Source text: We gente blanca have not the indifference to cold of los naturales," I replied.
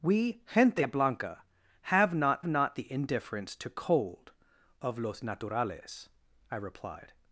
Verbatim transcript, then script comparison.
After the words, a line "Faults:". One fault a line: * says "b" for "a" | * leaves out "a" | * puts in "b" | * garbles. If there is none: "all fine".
We gente blanca have not not the indifference to cold of los naturales," I replied.
Faults:
* puts in "not"